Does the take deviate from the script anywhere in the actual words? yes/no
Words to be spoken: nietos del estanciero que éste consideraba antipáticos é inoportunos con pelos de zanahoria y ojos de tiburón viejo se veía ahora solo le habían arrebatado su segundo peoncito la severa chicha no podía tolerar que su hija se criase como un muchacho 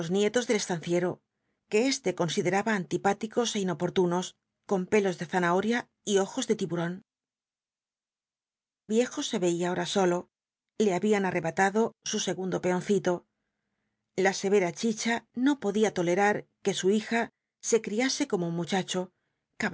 no